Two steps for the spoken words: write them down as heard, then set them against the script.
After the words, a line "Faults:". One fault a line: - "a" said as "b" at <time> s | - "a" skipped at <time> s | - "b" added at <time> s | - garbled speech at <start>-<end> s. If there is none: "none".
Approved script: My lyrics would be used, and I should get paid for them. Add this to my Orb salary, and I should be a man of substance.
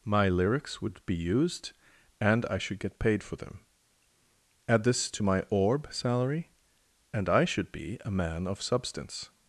My lyrics would be used, and I should get paid for them. Add this to my Orb salary, and I should be a man of substance.
Faults:
none